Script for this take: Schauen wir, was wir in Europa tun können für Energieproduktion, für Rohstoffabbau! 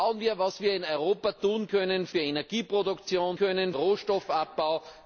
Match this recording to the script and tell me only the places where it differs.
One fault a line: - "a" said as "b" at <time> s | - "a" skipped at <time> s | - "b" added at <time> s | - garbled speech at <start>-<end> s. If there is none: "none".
- "für" said as "können" at 3.3 s